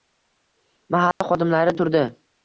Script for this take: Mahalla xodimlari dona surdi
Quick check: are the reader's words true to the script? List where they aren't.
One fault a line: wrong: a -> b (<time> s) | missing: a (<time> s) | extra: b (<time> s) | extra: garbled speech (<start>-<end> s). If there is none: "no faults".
missing: dona (1.8 s)